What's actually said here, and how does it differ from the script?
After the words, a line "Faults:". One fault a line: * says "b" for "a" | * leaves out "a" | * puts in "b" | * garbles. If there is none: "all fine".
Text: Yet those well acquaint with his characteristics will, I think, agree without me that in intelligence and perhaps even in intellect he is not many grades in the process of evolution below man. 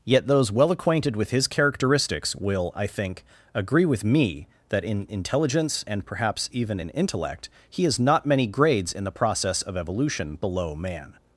Yet those well acquainted with his characteristics will, I think, agree with me that in intelligence and perhaps even in intellect he is not many grades in the process of evolution below man.
Faults:
* says "acquainted" for "acquaint"
* says "with" for "without"